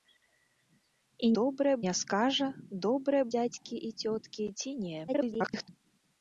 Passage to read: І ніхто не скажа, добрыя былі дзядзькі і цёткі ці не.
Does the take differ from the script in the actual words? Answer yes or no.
yes